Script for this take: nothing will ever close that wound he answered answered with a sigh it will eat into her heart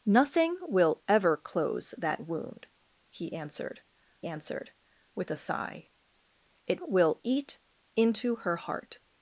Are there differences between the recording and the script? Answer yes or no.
no